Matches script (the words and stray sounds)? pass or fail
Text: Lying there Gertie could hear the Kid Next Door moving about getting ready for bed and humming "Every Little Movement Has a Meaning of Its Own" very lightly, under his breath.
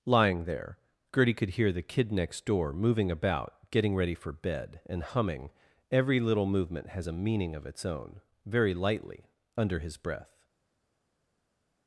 pass